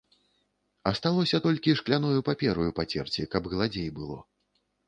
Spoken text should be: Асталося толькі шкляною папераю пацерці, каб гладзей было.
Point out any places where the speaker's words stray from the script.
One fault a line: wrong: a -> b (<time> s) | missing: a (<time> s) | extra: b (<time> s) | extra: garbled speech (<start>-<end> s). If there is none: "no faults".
no faults